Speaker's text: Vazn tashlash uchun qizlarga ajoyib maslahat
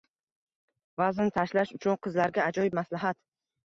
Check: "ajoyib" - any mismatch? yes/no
no